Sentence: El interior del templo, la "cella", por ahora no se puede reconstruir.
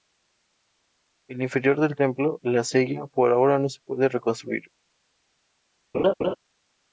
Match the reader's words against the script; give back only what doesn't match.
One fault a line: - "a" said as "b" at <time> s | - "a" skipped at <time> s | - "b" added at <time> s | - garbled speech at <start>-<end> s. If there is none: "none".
none